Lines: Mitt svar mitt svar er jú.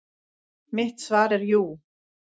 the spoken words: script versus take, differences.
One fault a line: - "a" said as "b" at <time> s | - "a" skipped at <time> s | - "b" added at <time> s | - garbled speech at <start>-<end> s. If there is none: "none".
- "mitt svar" skipped at 1.3 s